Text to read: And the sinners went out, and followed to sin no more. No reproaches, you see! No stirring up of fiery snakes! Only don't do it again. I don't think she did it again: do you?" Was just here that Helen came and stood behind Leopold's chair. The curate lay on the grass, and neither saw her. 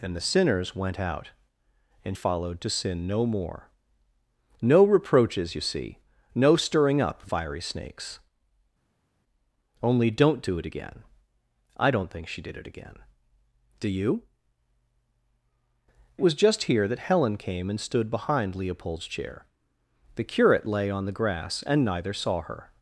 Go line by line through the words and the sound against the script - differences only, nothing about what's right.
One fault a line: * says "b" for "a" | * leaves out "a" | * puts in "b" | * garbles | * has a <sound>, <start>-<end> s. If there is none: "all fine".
all fine